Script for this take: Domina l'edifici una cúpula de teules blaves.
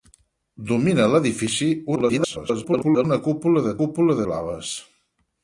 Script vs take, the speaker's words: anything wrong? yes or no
yes